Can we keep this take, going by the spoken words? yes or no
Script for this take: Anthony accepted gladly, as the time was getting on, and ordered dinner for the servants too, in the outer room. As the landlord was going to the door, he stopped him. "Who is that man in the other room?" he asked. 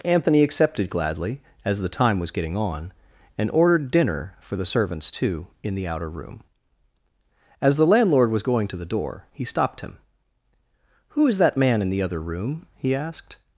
yes